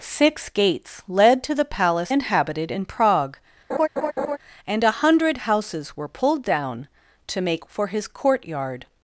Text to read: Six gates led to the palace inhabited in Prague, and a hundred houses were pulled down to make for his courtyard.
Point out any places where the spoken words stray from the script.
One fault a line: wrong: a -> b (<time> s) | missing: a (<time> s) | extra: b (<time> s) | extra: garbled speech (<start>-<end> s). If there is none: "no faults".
no faults